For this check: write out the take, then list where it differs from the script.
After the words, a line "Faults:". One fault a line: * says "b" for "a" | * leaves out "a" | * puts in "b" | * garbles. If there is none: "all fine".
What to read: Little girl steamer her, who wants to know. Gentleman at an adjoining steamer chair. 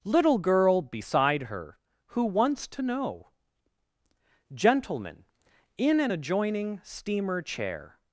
Little girl beside her, who wants to know. Gentleman in an adjoining steamer chair.
Faults:
* says "beside" for "steamer"
* says "in" for "at"